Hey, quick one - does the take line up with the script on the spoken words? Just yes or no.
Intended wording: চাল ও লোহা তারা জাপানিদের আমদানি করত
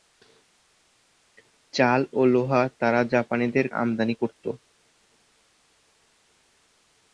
yes